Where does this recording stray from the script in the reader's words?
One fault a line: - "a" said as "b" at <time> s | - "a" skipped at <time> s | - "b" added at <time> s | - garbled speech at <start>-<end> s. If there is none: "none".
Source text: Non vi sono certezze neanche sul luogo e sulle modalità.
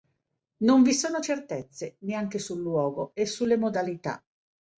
none